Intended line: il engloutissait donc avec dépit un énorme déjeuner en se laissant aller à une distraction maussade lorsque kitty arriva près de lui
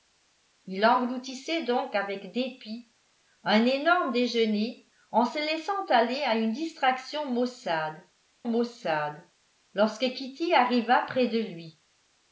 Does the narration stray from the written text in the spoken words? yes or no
yes